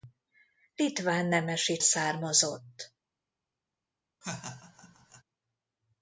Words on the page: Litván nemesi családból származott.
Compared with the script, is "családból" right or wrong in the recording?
wrong